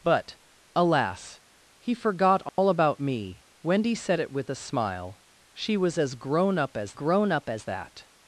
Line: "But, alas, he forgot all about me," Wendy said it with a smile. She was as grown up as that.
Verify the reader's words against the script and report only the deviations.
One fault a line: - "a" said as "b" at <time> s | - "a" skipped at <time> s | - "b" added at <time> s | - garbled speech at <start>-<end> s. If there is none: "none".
- "grown up as" added at 6.9 s